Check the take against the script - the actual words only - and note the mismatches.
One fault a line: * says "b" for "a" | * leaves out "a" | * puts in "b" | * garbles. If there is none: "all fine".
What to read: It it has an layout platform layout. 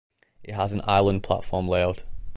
* leaves out "it"
* says "island" for "layout"